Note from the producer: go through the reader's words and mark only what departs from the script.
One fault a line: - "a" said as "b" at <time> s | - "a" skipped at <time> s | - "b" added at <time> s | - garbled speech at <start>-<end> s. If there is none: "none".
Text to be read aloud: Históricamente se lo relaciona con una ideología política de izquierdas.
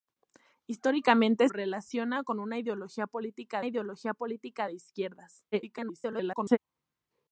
- "se lo" skipped at 1.5 s
- "ideología política" added at 3.6 s
- garbled speech at 5.5-6.6 s